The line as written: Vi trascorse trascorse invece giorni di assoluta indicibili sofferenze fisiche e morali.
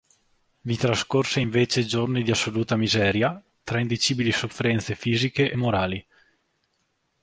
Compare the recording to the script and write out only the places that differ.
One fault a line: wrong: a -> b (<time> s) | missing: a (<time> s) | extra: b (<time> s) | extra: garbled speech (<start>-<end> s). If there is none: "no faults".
missing: trascorse (1.4 s)
extra: miseria tra (2.8 s)